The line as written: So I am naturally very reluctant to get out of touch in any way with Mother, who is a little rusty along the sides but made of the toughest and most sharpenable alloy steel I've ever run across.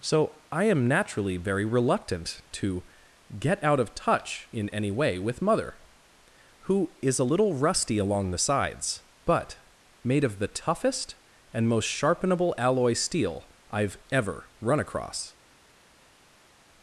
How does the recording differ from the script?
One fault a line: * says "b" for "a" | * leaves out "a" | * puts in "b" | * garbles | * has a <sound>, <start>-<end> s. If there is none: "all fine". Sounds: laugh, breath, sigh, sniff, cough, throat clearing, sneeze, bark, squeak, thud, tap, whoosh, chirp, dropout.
all fine